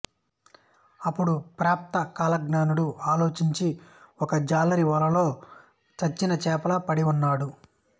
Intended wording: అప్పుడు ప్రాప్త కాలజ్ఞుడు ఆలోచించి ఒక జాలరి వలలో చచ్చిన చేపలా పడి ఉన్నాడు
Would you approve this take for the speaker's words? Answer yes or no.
yes